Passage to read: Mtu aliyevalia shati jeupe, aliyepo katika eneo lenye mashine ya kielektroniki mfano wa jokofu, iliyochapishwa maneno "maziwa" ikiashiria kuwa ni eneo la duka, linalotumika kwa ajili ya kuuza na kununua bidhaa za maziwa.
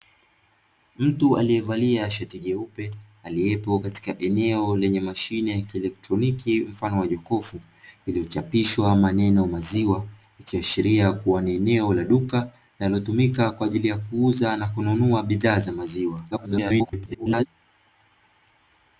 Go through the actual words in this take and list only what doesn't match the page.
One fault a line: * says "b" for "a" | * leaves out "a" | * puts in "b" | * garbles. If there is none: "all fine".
* garbles